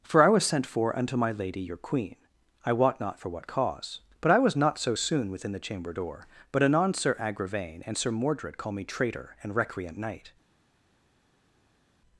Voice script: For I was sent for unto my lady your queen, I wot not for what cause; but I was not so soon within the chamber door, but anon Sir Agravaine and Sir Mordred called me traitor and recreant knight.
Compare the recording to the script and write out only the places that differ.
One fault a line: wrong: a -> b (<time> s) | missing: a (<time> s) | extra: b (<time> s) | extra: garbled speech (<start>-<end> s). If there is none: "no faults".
wrong: called -> call (8.6 s)